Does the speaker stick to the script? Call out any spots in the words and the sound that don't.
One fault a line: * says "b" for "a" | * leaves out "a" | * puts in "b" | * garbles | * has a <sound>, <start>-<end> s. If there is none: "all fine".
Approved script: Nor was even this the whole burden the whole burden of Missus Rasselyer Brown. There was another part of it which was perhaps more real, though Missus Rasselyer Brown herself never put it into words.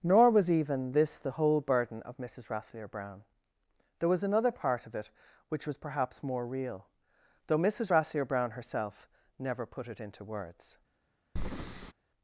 * leaves out "the whole burden"
* has a breath, 11.4-11.9 s